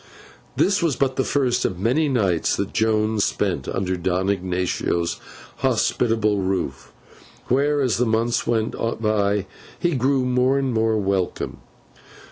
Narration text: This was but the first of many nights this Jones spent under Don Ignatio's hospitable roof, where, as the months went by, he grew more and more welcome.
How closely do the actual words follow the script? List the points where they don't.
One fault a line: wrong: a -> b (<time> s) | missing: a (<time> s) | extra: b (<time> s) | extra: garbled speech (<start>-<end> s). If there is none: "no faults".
wrong: this -> that (2.5 s)